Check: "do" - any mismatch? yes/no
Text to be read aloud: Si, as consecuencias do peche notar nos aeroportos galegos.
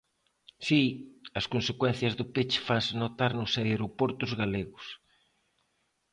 no